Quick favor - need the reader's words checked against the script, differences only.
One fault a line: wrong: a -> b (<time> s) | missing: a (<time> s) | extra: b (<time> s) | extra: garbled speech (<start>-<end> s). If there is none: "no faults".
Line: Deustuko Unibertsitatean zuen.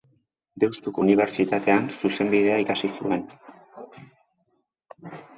extra: zuzenbidea ikasi (2.0 s)